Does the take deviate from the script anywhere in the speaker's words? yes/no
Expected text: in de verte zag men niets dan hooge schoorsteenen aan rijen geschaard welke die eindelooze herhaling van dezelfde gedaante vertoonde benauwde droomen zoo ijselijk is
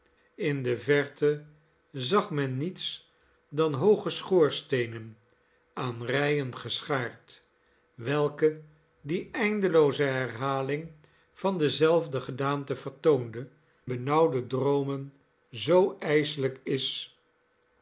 no